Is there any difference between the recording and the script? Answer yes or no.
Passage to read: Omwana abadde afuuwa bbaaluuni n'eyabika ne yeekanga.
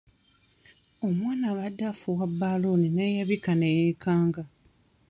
no